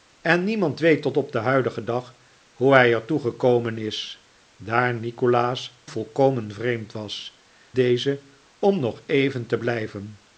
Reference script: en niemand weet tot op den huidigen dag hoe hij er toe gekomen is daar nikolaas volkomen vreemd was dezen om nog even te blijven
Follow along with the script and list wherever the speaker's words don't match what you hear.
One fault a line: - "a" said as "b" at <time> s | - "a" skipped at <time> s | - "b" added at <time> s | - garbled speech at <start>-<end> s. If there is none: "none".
none